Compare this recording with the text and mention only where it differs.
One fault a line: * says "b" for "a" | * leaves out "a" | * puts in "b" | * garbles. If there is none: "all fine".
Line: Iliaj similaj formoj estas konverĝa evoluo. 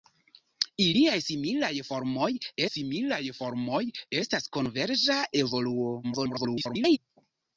* puts in "similaj formoj"
* garbles